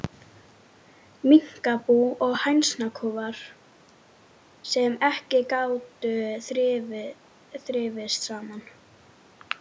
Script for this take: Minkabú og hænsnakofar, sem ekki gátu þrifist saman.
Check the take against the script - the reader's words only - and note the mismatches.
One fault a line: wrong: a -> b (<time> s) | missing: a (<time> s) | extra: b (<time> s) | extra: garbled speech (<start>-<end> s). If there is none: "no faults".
no faults